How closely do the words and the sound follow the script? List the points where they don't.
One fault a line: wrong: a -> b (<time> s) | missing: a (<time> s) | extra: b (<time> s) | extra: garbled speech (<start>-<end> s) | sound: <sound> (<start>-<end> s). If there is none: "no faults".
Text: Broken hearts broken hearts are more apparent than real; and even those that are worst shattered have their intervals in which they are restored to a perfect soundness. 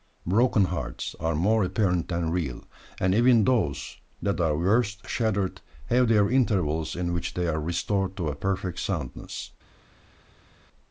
missing: broken hearts (1.1 s)